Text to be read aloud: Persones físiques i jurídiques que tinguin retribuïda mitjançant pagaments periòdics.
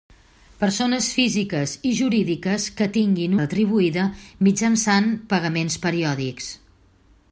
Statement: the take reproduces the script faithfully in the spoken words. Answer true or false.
true